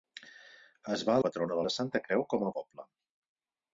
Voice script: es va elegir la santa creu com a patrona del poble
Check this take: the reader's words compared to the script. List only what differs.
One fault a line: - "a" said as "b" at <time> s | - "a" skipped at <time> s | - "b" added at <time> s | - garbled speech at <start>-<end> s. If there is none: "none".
- "elegir" said as "patrona" at 1.3 s
- "patrona del" skipped at 2.5 s